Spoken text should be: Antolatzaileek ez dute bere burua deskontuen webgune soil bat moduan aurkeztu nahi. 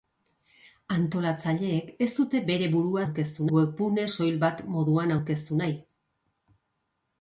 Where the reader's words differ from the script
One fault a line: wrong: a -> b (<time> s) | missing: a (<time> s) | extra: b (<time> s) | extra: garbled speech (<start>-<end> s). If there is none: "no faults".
wrong: deskontuen -> aurkeztu (3.0 s)